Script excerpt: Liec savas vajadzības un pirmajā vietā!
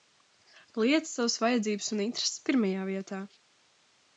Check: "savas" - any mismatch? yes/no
no